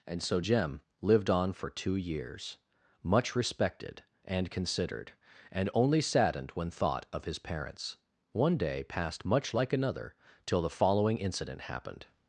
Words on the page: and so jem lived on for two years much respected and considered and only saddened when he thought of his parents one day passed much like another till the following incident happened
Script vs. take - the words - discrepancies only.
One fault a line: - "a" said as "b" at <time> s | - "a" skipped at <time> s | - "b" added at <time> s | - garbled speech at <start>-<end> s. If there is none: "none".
- "he" skipped at 6.7 s